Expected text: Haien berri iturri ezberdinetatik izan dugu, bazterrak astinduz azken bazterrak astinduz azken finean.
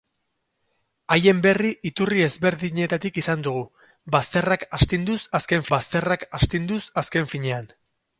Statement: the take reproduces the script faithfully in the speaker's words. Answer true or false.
true